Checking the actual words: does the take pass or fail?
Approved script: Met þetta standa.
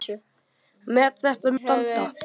pass